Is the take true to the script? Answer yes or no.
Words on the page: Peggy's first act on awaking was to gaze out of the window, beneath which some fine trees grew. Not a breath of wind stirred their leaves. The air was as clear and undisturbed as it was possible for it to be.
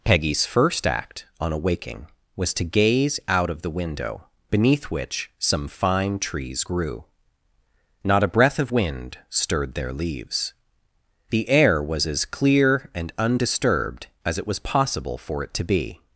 yes